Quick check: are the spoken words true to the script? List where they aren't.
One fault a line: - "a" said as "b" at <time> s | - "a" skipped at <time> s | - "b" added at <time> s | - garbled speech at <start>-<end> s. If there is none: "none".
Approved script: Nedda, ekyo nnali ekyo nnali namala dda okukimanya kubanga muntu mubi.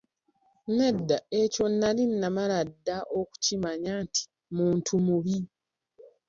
- "ekyo nnali" skipped at 2.0 s
- "kubanga" said as "nti" at 4.0 s